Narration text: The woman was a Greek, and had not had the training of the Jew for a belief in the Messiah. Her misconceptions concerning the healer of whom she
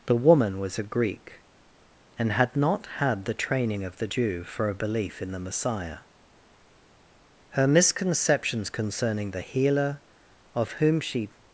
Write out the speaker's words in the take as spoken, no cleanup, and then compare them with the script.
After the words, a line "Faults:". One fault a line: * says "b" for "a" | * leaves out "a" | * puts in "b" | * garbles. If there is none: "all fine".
The woman was a Greek, and had not had the training of the Jew for a belief in the Messiah. Her misconceptions concerning the healer of whom she
Faults:
all fine